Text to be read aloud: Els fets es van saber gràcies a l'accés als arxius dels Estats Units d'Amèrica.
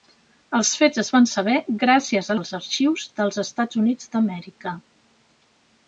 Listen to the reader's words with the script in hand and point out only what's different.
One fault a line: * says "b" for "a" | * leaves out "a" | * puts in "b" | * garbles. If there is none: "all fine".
* leaves out "l'accés"